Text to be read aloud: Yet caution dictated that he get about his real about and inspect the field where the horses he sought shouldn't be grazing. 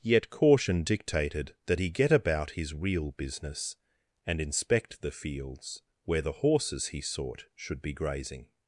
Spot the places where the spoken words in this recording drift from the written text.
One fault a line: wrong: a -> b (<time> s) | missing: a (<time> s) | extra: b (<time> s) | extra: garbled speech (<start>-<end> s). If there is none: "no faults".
wrong: about -> business (3.1 s)
wrong: field -> fields (5.1 s)
wrong: shouldn't -> should (7.5 s)